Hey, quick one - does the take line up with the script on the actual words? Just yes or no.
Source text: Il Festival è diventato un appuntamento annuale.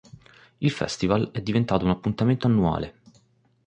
yes